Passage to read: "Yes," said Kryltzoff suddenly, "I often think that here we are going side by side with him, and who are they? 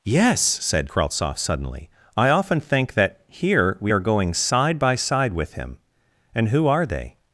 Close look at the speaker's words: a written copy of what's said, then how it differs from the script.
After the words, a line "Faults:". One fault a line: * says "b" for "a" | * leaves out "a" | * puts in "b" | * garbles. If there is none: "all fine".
"Yes," said Kryltzoff suddenly, "I often think that here we are going side by side with him, and who are they?
Faults:
all fine